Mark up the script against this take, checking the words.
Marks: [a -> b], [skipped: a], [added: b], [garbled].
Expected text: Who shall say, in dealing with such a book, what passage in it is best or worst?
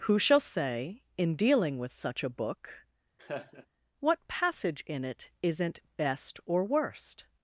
Who shall say, in dealing with such a book, what passage in it [is -> isn't] best or worst?